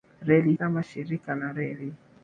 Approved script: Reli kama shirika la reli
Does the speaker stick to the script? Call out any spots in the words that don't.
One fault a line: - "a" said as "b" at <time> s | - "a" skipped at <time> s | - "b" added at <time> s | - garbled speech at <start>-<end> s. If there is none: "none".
none